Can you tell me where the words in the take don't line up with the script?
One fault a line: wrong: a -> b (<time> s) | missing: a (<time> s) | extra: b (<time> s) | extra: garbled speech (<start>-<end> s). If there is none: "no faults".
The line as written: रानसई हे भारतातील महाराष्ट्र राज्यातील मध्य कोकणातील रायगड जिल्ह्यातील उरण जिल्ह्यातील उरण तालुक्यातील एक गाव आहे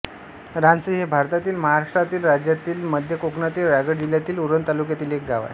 missing: जिल्ह्यातील उरण (4.7 s)